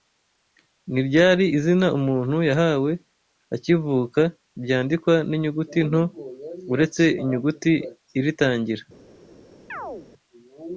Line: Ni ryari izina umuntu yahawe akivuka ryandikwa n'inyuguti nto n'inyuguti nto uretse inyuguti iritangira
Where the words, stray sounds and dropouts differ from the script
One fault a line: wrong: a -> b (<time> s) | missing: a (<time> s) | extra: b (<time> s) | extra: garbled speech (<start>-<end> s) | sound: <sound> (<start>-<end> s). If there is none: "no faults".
missing: n'inyuguti nto (6.0 s)
sound: chirp (9.7-10.1 s)